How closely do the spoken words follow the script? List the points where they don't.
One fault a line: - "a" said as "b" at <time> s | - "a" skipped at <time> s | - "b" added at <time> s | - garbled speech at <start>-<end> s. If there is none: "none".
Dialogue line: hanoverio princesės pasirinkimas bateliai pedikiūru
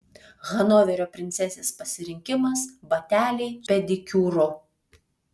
none